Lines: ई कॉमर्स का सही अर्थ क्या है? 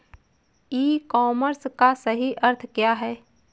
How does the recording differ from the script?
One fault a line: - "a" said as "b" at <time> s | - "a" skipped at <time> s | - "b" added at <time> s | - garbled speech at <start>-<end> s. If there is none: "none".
none